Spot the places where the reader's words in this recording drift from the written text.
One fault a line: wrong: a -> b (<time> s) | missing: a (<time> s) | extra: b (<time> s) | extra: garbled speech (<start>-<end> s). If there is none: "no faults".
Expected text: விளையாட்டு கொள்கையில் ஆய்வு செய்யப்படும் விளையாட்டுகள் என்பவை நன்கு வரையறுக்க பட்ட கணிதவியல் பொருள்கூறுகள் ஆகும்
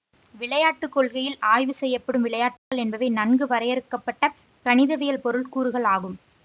no faults